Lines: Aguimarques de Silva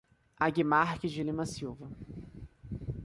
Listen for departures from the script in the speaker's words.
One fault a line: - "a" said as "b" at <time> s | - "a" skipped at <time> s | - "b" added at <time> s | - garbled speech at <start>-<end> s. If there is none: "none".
- "Lima" added at 1.2 s